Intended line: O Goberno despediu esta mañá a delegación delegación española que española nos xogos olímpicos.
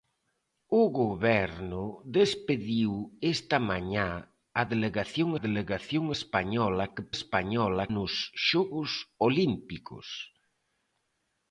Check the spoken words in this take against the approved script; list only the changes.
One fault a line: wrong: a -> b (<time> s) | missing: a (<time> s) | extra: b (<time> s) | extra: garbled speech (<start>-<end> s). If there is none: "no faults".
no faults